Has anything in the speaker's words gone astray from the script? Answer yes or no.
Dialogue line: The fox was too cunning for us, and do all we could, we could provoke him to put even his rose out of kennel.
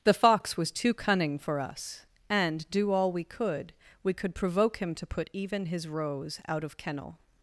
no